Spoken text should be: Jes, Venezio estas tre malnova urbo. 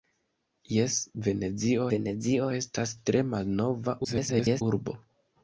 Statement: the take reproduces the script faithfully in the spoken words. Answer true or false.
false